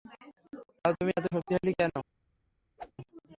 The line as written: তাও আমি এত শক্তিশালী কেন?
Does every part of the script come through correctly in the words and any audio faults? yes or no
no